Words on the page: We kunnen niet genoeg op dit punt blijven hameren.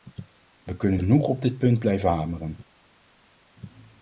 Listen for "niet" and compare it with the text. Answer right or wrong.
wrong